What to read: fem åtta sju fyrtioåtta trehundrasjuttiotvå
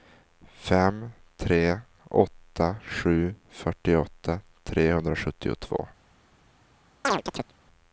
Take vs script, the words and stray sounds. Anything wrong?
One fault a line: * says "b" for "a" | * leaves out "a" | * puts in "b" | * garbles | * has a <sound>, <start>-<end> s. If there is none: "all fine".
* puts in "tre"
* has a chirp, 7.0-7.5 s